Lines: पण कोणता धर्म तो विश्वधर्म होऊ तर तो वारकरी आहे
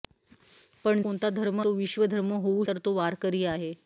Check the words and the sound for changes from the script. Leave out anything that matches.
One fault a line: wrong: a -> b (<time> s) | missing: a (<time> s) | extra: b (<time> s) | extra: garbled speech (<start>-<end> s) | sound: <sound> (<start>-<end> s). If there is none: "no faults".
no faults